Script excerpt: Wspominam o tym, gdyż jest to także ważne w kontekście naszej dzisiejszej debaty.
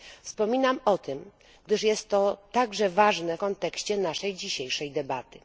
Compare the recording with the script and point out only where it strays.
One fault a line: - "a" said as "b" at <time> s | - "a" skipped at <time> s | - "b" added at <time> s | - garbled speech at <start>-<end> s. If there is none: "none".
- "w" skipped at 3.4 s